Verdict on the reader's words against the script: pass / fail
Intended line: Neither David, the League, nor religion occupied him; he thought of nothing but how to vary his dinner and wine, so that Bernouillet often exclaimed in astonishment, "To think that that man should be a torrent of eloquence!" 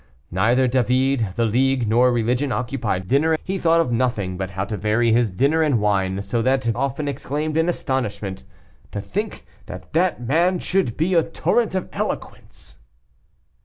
fail